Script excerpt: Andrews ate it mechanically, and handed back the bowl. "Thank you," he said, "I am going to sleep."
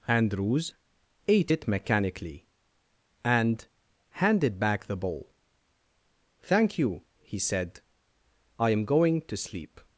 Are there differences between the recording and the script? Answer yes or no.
no